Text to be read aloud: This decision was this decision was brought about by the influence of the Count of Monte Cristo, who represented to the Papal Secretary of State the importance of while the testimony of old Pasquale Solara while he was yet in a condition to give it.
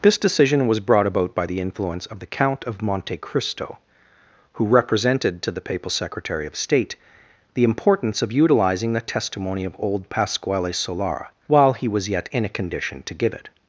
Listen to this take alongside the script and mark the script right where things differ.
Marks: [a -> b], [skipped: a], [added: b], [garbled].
This decision was [skipped: this decision was] brought about by the influence of the Count of Monte Cristo, who represented to the Papal Secretary of State the importance of [while -> utilizing] the testimony of old Pasquale Solara while he was yet in a condition to give it.